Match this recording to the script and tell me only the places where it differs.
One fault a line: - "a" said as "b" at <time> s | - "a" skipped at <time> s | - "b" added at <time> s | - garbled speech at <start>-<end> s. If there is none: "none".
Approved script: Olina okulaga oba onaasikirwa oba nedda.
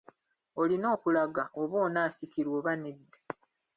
none